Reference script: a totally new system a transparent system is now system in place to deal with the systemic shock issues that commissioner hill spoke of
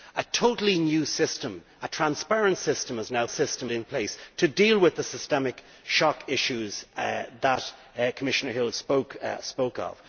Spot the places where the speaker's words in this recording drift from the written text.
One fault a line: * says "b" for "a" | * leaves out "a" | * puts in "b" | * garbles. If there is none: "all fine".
all fine